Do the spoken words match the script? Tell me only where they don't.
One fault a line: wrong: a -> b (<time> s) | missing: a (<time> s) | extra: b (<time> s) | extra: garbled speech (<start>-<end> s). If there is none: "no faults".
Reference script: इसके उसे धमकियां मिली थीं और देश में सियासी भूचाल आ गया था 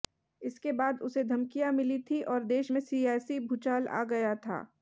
extra: बाद (0.7 s)